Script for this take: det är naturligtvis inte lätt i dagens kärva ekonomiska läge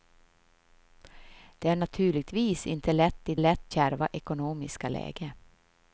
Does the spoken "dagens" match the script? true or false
false